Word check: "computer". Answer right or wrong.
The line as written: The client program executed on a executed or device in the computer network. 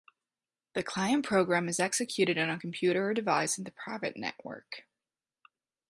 wrong